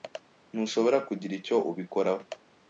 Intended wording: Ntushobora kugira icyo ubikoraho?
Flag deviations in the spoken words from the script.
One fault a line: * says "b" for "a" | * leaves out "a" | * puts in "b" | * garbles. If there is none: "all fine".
all fine